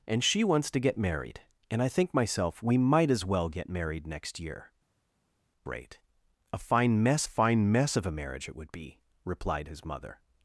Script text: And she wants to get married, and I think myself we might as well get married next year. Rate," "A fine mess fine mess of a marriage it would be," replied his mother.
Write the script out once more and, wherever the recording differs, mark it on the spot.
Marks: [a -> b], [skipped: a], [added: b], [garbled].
And she wants to get married, and I think myself we might as well get married next year. Rate," "A fine mess fine mess of a marriage it would be," replied his mother.